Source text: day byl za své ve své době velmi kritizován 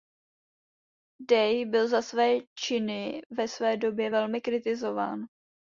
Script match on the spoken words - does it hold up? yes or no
no